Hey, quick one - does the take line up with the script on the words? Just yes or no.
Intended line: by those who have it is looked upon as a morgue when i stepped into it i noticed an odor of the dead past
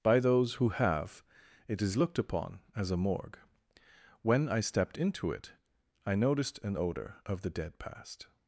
yes